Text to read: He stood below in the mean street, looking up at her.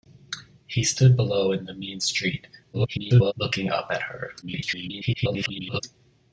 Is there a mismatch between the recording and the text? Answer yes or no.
yes